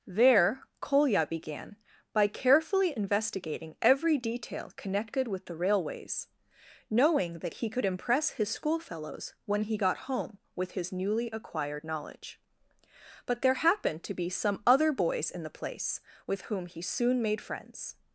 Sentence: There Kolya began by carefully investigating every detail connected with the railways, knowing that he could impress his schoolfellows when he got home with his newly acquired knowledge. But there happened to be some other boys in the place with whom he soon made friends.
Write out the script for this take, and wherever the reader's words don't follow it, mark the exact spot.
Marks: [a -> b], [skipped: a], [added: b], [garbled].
There Kolya began by carefully investigating every detail connected with the railways, knowing that he could impress his schoolfellows when he got home with his newly acquired knowledge. But there happened to be some other boys in the place with whom he soon made friends.